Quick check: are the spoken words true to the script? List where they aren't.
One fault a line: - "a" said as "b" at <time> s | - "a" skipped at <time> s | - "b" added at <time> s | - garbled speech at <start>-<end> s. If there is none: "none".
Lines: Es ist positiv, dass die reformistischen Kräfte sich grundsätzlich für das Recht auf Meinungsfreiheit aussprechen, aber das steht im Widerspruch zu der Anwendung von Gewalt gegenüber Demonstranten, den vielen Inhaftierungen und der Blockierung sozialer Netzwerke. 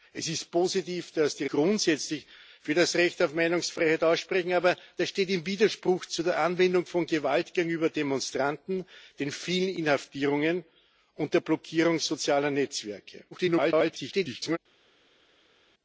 - "reformistischen Kräfte sich" skipped at 1.4 s
- garbled speech at 13.3-14.6 s